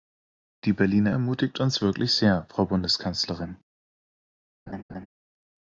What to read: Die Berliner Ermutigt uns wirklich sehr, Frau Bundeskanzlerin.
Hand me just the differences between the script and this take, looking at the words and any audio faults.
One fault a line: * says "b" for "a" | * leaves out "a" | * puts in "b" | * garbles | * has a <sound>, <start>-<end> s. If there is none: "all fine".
* has a laugh, 4.7-5.1 s